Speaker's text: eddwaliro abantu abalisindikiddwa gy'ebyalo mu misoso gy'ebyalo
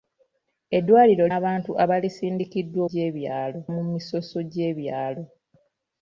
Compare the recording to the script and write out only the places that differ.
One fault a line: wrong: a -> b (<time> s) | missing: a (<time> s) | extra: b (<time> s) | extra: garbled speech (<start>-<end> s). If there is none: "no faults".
no faults